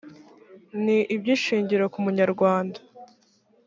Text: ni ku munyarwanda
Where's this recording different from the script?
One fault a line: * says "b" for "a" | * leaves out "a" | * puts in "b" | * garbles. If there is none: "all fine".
* puts in "iby'ishingiro"